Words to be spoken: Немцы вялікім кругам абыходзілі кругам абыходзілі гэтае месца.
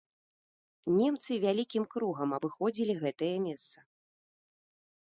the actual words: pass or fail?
fail